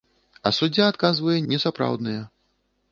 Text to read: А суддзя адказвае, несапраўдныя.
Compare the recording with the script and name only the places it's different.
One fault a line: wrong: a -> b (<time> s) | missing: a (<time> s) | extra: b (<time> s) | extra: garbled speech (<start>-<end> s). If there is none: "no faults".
no faults